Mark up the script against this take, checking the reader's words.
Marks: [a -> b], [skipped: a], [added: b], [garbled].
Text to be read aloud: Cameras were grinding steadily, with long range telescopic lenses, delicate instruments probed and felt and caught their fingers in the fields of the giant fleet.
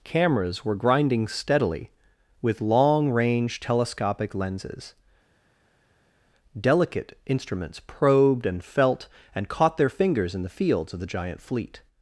Cameras were grinding steadily, with long range telescopic lenses, delicate instruments probed and felt and caught their fingers in the fields of the giant fleet.